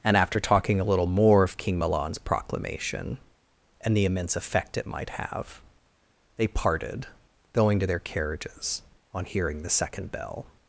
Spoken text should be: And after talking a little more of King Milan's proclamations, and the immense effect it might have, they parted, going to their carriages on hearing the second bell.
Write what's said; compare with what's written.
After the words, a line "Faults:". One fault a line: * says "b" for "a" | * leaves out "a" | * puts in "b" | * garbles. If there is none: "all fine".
And after talking a little more of King Milan's proclamation, and the immense effect it might have, they parted, going to their carriages on hearing the second bell.
Faults:
* says "proclamation" for "proclamations"